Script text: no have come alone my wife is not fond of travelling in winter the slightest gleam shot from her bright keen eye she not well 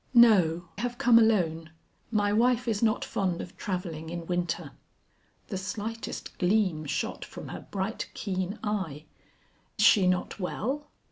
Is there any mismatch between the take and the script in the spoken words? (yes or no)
no